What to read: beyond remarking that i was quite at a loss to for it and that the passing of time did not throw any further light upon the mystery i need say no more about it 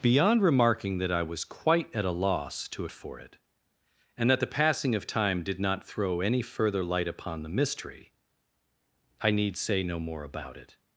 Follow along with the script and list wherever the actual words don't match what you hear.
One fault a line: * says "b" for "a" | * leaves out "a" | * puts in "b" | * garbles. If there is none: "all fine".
all fine